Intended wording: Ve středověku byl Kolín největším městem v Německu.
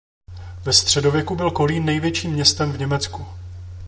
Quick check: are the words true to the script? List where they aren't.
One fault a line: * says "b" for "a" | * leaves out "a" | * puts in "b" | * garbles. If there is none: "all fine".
all fine